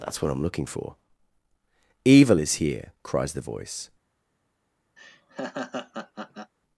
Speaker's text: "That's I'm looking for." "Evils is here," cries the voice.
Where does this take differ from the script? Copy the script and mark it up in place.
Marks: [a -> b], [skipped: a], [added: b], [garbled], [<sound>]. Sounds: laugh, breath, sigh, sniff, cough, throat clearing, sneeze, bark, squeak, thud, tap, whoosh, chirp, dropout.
"That's [added: what] I'm looking for." ["Evils -> Evil] is here," cries the voice. [laugh]